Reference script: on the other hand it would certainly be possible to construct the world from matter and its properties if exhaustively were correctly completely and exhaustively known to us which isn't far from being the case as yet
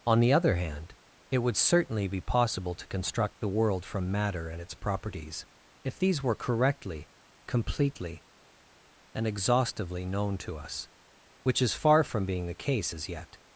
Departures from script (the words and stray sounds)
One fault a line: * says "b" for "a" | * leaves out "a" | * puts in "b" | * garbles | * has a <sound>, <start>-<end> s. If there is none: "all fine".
* says "these" for "exhaustively"
* says "is" for "isn't"